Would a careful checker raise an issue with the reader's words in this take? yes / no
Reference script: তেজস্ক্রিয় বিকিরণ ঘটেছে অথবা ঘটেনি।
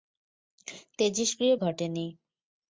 yes